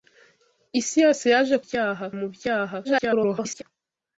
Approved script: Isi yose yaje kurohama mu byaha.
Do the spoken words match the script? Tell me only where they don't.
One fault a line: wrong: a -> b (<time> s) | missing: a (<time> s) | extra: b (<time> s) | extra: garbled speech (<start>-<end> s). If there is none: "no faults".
wrong: kurohama -> byaha (1.6 s)
extra: garbled speech (2.8-3.6 s)